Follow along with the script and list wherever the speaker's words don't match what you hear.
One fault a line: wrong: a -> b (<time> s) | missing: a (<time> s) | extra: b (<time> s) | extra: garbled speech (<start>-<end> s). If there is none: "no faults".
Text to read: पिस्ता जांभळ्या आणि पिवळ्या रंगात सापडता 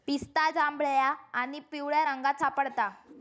no faults